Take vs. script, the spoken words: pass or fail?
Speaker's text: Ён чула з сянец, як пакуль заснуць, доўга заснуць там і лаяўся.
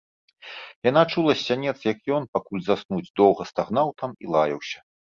fail